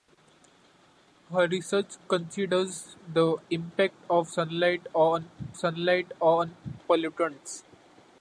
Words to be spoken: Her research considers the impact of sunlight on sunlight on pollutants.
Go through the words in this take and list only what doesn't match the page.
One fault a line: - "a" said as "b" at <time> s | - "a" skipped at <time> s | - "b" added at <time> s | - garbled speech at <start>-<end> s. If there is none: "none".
none